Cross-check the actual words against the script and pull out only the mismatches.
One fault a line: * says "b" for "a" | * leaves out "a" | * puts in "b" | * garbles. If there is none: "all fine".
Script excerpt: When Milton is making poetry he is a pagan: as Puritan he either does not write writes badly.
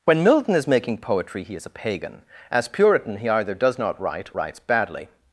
all fine